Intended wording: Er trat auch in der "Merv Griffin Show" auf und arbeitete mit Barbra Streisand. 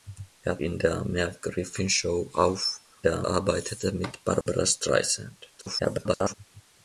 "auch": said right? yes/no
no